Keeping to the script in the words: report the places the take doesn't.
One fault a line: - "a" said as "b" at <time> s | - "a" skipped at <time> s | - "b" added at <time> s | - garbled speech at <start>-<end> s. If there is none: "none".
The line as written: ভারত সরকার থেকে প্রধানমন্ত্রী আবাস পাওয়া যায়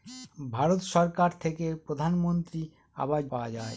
none